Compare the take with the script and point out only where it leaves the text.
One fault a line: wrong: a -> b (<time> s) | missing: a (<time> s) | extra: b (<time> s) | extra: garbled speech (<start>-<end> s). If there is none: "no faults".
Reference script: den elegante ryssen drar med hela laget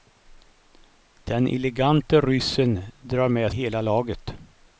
no faults